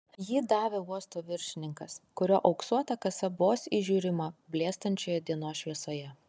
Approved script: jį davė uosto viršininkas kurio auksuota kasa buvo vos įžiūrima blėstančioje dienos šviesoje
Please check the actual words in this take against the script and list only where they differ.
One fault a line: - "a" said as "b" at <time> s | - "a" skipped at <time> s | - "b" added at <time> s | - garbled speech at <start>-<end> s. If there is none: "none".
- "buvo" skipped at 3.3 s